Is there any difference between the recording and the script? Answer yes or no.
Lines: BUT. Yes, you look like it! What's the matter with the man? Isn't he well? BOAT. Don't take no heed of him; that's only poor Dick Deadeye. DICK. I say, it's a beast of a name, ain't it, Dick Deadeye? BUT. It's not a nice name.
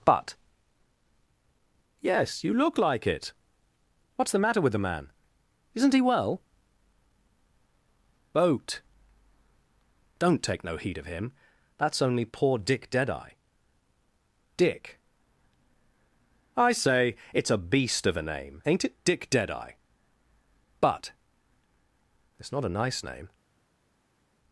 no